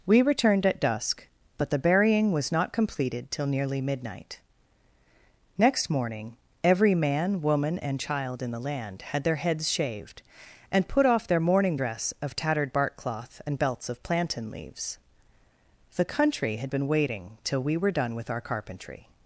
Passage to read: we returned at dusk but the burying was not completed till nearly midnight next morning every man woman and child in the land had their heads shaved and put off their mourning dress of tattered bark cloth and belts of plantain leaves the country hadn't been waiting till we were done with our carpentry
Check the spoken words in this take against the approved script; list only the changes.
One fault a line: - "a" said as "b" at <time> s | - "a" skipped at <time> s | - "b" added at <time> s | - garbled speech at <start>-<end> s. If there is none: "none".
- "hadn't" said as "had" at 16.6 s